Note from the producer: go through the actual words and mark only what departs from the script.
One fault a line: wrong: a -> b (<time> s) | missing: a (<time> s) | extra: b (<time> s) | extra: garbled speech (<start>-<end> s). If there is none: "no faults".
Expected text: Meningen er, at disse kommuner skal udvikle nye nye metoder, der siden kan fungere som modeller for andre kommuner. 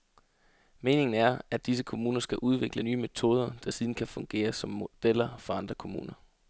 missing: nye (3.0 s)